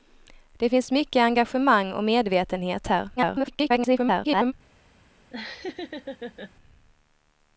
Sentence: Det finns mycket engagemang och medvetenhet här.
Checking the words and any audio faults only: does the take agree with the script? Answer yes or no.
no